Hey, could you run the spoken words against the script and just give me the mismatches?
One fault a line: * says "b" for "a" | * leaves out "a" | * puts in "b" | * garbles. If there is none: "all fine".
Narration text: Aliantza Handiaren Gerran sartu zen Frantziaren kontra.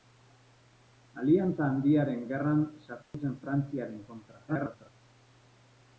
* garbles